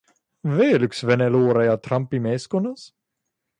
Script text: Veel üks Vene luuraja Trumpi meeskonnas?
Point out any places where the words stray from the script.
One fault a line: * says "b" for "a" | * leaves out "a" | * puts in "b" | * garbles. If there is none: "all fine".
all fine